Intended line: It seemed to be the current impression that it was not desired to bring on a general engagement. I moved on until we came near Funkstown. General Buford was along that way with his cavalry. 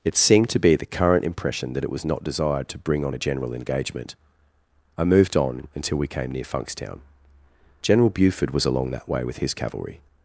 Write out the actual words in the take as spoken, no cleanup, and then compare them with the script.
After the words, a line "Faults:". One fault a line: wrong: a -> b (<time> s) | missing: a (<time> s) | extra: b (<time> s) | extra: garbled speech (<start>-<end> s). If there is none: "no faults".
It seemed to be the current impression that it was not desired to bring on a general engagement. I moved on until we came near Funkstown. General Buford was along that way with his cavalry.
Faults:
no faults